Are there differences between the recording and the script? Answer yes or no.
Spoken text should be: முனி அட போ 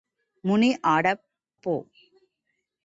no